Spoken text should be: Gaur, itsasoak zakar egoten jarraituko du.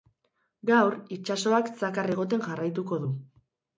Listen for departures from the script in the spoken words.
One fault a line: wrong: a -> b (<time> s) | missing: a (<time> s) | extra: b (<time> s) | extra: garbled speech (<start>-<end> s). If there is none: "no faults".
no faults